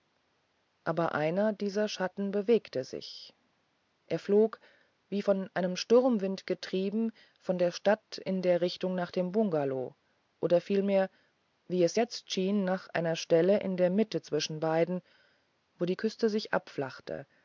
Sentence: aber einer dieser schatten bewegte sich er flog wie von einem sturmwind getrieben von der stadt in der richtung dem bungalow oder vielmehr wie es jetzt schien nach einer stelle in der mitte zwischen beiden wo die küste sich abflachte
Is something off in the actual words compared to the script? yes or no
yes